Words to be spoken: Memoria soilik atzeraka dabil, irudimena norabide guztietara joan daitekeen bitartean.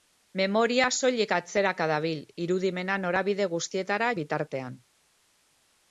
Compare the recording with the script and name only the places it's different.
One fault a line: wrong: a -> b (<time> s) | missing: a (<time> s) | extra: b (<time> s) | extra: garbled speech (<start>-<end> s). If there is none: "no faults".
missing: joan daitekeen (4.1 s)